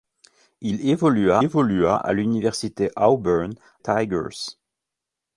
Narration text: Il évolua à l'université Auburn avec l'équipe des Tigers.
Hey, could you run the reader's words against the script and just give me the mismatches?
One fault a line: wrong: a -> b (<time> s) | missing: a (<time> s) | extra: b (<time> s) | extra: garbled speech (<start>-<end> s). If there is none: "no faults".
extra: évolua (1.4 s)
missing: avec l'équipe des (3.6 s)